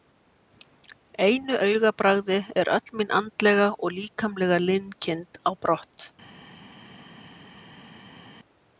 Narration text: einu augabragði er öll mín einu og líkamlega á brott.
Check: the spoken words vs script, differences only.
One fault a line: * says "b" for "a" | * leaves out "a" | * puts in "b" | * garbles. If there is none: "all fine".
* says "andlega" for "einu"
* puts in "linkind"